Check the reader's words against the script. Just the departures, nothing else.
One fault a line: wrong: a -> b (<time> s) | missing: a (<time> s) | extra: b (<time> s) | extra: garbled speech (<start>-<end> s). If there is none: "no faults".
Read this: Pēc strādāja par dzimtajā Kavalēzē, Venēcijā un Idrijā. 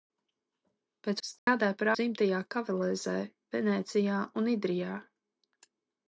no faults